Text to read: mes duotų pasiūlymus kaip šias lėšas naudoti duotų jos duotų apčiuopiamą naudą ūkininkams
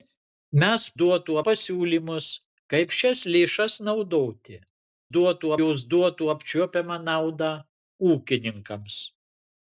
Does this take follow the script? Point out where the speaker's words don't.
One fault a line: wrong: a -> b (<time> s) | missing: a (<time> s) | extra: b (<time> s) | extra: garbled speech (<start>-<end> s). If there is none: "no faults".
no faults